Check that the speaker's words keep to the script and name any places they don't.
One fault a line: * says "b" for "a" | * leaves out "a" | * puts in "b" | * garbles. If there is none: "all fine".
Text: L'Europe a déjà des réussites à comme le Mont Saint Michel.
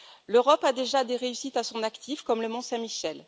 * puts in "son actif"